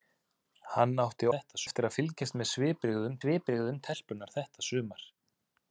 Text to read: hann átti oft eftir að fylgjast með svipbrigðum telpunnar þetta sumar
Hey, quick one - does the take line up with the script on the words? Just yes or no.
no